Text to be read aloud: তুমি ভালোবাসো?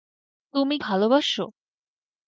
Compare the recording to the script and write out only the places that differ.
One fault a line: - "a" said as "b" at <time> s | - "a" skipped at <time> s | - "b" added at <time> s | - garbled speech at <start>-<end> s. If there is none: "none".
none